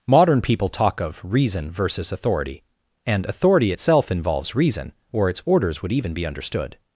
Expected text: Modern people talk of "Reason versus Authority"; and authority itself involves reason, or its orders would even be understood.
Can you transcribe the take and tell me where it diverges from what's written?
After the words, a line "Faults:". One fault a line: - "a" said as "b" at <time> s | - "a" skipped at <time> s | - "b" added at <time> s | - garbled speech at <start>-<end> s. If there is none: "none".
Modern people talk of "Reason versus Authority"; and authority itself involves reason, or its orders would even be understood.
Faults:
none